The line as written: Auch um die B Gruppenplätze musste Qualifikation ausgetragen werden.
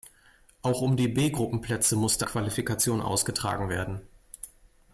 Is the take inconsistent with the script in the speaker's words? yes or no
no